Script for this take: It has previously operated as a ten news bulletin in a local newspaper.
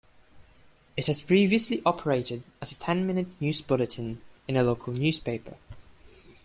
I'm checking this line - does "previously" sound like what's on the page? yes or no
yes